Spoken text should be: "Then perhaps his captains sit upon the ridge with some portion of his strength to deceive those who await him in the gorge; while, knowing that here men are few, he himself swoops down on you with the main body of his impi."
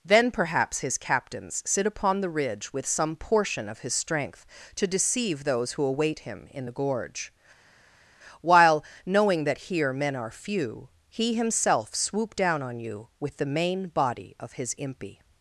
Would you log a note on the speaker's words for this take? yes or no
yes